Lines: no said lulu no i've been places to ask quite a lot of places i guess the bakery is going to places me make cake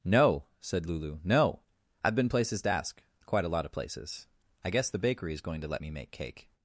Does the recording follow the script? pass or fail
fail